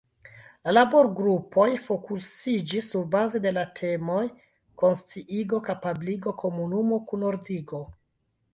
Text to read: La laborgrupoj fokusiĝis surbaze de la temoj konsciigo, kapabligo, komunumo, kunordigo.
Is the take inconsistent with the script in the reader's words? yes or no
no